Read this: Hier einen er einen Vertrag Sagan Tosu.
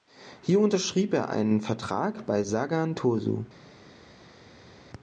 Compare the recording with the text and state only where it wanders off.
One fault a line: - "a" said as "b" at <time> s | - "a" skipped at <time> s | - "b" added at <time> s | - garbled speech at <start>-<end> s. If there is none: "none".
- "einen" said as "unterschrieb" at 0.6 s
- "bei" added at 2.2 s